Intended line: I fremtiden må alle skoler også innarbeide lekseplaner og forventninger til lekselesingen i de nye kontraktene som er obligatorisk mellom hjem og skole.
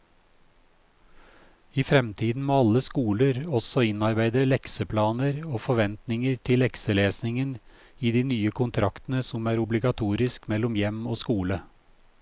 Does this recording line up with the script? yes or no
yes